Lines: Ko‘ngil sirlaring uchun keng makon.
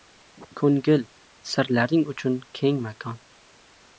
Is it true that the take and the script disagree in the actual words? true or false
false